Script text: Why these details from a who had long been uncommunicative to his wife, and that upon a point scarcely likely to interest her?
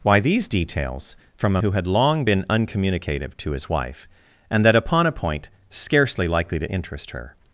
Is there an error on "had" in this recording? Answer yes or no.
no